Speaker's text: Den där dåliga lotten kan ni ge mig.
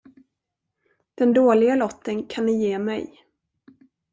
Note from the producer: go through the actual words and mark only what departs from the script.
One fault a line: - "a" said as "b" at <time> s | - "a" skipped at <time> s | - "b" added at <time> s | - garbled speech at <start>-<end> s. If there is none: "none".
- "där" skipped at 1.3 s